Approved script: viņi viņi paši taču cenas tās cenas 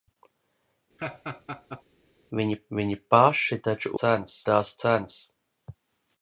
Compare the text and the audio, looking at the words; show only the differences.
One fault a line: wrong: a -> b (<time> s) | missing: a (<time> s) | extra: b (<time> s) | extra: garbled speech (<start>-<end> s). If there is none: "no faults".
no faults